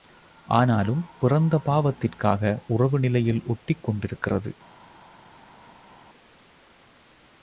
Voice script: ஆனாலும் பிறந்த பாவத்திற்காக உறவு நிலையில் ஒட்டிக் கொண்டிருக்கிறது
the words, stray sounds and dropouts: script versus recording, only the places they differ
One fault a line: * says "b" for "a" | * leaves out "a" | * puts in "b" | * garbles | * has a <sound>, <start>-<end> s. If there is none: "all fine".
all fine